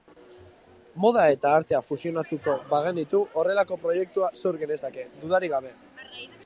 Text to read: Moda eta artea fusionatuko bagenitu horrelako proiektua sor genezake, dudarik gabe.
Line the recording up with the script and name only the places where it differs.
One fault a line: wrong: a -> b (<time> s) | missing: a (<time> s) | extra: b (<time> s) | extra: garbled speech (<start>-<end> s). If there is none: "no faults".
no faults